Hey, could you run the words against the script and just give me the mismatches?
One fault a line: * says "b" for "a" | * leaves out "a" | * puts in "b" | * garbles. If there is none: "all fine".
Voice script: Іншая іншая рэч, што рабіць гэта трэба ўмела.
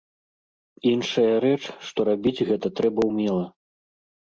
* leaves out "іншая"